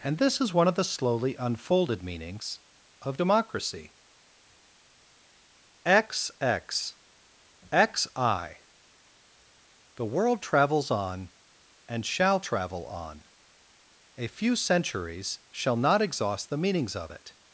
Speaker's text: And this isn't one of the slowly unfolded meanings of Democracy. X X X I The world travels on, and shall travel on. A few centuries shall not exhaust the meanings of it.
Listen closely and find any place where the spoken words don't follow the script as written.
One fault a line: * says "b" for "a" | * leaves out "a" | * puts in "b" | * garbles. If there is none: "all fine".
* says "is" for "isn't"